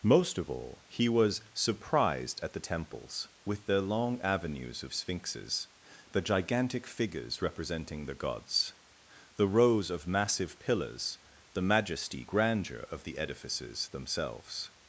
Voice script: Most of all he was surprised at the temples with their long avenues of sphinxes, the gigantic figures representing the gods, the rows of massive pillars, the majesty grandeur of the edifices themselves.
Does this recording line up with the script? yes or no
yes